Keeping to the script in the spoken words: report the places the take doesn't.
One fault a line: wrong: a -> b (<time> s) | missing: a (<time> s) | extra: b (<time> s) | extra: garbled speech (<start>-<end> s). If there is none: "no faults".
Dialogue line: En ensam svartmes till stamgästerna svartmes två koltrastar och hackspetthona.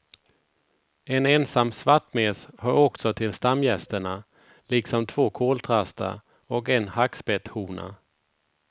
extra: hör också (2.6 s)
wrong: svartmes -> liksom (4.7 s)
extra: en (6.7 s)